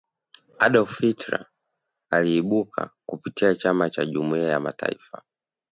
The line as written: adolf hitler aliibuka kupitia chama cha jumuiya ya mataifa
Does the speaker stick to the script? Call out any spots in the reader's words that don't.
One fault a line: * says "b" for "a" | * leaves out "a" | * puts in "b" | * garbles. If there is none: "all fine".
all fine